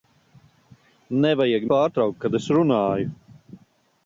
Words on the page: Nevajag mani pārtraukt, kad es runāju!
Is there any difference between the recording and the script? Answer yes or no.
yes